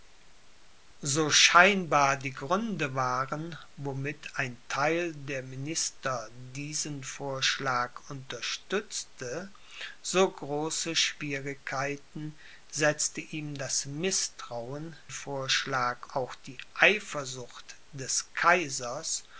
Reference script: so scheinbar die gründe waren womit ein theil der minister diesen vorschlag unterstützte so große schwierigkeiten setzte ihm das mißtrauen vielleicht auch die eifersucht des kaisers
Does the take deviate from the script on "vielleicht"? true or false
true